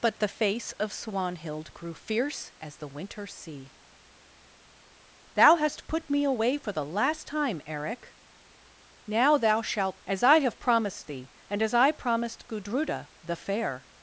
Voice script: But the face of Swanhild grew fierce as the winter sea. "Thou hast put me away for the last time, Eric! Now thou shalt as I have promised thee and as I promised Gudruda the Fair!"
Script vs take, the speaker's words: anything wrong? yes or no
no